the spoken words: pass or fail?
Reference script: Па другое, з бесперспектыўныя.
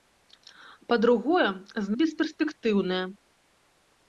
pass